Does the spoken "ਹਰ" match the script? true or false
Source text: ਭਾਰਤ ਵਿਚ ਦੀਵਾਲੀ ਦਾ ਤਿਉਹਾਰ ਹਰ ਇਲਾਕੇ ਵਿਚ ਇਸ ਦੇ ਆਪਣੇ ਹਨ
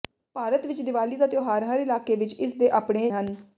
true